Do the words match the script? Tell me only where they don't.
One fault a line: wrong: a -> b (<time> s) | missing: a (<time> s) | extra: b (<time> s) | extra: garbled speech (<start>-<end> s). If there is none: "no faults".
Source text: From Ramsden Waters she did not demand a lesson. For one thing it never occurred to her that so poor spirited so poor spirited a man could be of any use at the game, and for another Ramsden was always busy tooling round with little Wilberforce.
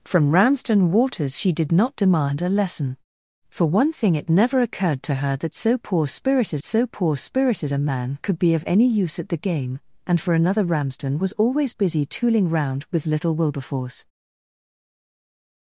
no faults